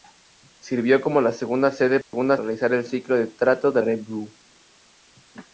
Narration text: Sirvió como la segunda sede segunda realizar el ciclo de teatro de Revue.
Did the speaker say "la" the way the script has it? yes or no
yes